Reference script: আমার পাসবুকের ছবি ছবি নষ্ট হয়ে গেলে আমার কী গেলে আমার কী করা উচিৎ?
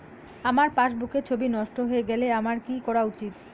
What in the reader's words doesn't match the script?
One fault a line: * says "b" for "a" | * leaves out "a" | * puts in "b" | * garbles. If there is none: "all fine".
* leaves out "ছবি"
* leaves out "গেলে আমার কী"